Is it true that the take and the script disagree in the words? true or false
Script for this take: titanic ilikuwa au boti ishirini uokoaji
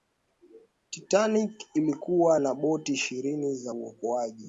true